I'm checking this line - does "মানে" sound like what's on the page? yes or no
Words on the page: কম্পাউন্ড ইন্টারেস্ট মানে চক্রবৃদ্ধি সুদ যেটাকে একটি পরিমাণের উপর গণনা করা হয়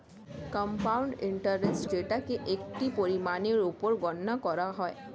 no